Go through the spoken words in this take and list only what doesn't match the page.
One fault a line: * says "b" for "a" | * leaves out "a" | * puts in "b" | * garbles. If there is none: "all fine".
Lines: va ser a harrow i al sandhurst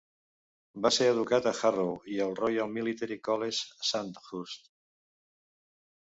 * puts in "educat"
* puts in "royal military college"